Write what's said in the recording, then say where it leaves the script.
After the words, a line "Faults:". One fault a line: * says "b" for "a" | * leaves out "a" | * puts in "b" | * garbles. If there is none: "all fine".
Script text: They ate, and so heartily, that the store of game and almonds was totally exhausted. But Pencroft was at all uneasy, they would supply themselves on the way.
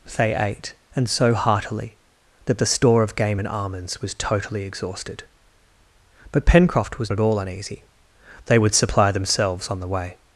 They ate, and so heartily, that the store of game and almonds was totally exhausted. But Pencroft was at all uneasy, they would supply themselves on the way.
Faults:
all fine